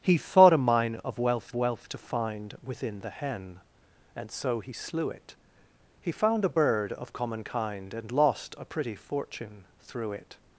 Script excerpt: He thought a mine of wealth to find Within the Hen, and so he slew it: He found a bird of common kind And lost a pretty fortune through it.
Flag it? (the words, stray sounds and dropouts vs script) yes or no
yes